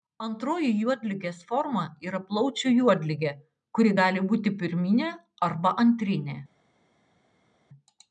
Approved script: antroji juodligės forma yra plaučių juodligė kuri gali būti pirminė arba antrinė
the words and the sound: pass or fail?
pass